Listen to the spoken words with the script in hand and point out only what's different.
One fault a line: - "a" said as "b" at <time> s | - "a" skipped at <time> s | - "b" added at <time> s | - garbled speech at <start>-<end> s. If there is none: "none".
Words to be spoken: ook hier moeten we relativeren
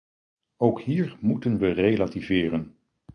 none